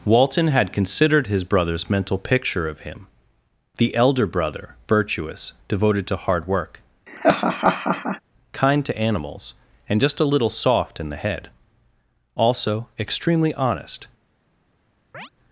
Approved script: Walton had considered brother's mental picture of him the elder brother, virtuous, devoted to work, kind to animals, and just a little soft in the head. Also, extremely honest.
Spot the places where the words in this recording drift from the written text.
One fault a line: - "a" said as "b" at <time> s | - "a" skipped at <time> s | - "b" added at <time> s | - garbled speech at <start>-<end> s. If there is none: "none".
- "his" added at 1.3 s
- "hard" added at 6.2 s